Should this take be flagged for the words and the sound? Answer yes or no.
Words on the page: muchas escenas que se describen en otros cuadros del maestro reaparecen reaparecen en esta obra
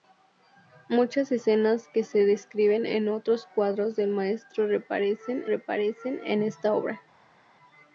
no